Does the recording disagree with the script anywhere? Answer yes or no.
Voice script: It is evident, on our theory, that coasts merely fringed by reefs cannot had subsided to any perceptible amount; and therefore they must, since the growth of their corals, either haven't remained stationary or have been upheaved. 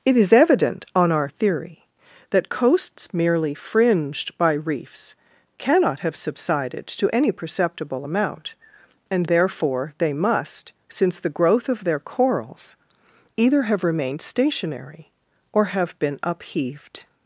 yes